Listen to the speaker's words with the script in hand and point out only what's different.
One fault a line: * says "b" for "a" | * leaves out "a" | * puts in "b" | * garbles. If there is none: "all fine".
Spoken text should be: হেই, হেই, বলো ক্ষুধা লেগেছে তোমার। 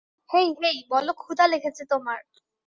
all fine